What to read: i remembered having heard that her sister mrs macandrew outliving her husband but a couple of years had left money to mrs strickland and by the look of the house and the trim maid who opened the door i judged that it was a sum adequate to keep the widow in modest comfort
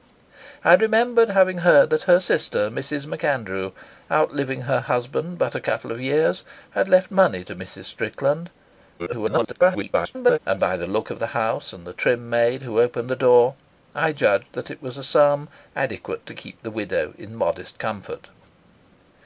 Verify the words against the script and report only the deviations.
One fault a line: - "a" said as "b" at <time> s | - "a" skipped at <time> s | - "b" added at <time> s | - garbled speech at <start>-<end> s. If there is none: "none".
- garbled speech at 9.0-10.4 s